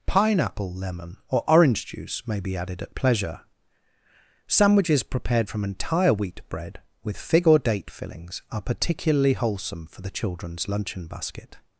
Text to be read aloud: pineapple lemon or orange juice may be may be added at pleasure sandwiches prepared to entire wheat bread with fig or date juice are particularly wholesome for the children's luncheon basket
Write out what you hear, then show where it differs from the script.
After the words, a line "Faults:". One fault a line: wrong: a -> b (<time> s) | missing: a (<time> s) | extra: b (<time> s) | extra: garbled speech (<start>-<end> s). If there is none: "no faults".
pineapple lemon or orange juice may be added at pleasure sandwiches prepared from entire wheat bread with fig or date fillings are particularly wholesome for the children's luncheon basket
Faults:
missing: may be (2.6 s)
wrong: to -> from (5.5 s)
wrong: juice -> fillings (7.9 s)